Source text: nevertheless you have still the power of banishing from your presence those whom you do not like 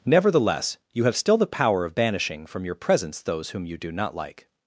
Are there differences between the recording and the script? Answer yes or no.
no